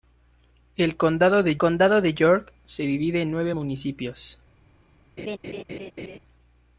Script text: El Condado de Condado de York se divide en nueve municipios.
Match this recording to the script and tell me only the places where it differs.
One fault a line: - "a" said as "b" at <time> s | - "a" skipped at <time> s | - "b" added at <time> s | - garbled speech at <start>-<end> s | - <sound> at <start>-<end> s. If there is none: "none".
- laugh at 5.2-6.2 s